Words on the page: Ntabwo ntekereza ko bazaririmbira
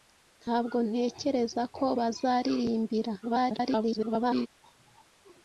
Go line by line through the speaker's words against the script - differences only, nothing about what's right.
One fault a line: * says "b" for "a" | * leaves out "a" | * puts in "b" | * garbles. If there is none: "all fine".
* garbles